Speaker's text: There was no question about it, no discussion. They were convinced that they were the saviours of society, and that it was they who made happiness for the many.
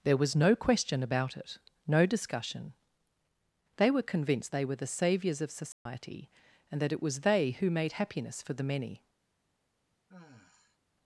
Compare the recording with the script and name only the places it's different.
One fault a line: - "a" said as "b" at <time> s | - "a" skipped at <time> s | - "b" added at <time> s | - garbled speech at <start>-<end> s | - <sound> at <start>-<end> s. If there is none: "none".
- "that" skipped at 4.5 s
- dropout at 5.7-5.9 s
- sigh at 10.1-10.8 s